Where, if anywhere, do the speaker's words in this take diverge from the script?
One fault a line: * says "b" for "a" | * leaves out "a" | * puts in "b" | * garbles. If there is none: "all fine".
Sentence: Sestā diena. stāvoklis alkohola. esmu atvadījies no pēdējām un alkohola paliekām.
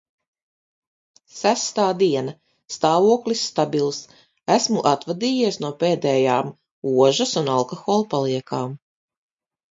* says "stabils" for "alkohola"
* puts in "ožas"